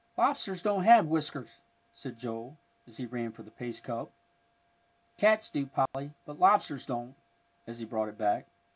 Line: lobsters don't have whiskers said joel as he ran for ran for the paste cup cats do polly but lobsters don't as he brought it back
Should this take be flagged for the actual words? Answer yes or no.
yes